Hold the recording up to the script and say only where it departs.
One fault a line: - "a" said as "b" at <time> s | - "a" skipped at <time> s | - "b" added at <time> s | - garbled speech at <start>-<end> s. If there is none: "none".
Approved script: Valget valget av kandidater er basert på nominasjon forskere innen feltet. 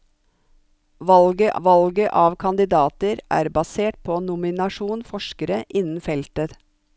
none